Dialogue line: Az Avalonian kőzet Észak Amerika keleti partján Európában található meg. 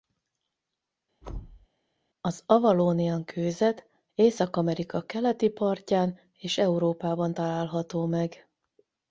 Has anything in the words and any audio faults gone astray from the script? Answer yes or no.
yes